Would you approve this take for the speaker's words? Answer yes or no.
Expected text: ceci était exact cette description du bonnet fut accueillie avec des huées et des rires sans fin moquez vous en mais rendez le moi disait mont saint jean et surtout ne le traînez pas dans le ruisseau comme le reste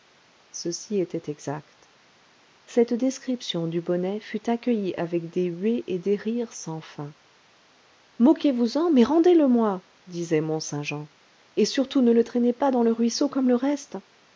yes